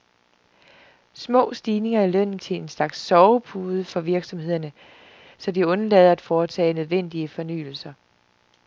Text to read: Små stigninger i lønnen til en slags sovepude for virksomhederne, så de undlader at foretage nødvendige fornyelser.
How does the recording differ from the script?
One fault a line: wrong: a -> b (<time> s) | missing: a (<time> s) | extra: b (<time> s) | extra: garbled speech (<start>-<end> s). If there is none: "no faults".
no faults